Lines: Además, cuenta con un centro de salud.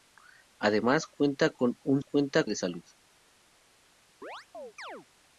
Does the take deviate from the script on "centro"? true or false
true